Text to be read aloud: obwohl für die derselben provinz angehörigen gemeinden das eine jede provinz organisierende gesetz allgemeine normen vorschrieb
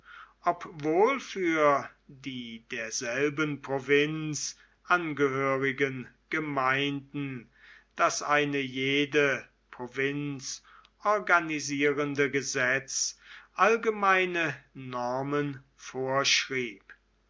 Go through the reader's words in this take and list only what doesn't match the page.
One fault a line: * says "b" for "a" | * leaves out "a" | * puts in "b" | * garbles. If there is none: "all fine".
all fine